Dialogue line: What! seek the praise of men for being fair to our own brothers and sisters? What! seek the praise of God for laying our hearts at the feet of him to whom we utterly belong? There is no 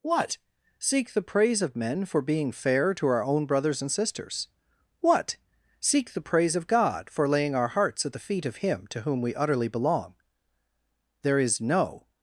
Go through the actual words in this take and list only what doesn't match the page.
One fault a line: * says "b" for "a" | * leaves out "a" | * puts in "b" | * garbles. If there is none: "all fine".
all fine